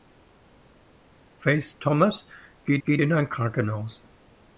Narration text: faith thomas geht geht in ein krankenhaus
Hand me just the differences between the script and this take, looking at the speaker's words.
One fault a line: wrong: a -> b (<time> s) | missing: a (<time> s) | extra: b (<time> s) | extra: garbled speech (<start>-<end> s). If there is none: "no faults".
no faults